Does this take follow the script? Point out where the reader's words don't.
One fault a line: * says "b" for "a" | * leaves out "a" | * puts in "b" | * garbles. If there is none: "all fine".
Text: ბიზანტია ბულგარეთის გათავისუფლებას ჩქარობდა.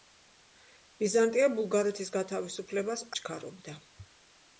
all fine